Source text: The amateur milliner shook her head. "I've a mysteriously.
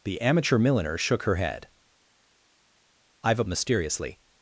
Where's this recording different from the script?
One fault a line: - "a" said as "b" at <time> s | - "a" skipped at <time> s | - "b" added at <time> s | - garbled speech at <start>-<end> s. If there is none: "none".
none